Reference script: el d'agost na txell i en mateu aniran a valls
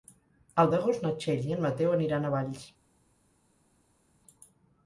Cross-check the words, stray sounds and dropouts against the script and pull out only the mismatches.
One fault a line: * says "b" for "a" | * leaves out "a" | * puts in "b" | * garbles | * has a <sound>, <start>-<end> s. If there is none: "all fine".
all fine